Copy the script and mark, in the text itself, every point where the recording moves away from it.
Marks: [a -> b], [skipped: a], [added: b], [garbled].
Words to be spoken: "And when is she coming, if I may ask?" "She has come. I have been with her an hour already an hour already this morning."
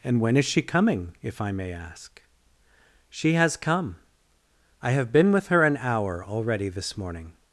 "And when is she coming, if I may ask?" "She has come. I have been with her an hour already [skipped: an hour already] this morning."